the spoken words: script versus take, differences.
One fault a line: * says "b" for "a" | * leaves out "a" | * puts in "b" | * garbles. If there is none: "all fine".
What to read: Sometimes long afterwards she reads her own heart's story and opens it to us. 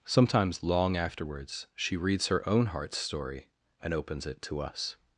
all fine